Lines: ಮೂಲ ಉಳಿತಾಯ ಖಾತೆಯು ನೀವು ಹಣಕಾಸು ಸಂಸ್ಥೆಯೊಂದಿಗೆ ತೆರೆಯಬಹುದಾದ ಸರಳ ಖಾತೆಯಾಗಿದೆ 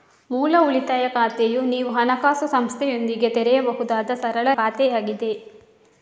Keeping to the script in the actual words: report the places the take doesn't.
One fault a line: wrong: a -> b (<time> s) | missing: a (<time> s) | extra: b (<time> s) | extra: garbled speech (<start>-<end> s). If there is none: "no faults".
no faults